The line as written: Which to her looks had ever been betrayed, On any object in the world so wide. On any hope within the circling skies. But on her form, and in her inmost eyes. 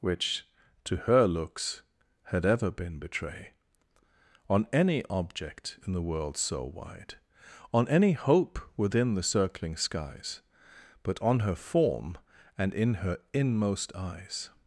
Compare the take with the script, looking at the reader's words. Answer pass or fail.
fail